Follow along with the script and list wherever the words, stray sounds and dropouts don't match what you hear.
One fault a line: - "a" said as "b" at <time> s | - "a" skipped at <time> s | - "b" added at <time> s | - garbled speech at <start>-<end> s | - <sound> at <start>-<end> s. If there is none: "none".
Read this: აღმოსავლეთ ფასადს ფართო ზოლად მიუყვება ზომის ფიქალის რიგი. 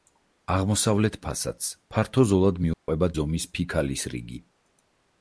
- dropout at 2.7-2.9 s